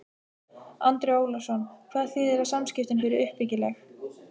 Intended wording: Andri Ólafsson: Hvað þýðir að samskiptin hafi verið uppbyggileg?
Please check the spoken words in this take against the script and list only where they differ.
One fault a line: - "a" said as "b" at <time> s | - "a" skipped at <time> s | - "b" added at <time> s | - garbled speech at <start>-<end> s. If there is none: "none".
- "hafi" skipped at 3.0 s